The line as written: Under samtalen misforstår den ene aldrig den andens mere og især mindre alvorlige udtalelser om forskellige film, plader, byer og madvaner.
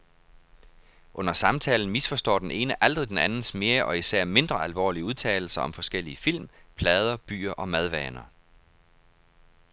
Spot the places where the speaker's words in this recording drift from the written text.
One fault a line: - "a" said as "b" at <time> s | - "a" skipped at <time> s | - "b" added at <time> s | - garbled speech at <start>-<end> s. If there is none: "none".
none